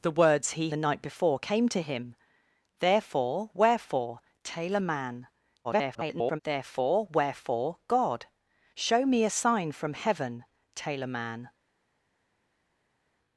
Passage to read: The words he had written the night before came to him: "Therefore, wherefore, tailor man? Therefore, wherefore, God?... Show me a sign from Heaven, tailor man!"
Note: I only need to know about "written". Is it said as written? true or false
false